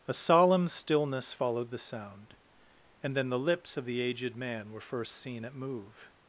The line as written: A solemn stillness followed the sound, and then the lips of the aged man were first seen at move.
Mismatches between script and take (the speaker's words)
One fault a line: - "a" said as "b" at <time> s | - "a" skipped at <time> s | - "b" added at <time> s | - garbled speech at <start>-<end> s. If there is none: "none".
none